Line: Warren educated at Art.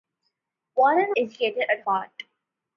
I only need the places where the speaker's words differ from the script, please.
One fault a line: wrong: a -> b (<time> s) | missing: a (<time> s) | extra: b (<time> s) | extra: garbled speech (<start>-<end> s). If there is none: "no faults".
no faults